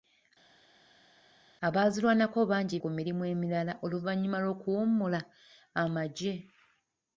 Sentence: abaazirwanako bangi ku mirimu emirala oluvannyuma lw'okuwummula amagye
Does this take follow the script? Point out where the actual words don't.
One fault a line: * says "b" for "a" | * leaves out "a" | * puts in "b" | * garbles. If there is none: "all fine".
all fine